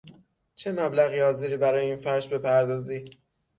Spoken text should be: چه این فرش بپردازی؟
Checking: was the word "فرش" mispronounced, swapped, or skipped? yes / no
no